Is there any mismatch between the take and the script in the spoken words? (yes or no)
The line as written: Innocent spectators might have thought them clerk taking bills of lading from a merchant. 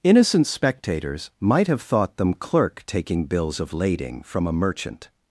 no